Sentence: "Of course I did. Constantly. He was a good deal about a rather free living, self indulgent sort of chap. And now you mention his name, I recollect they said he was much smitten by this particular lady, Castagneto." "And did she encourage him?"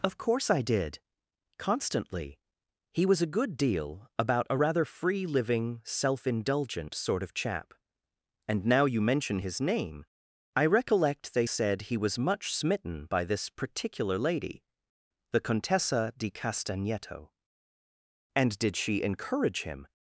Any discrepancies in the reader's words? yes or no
yes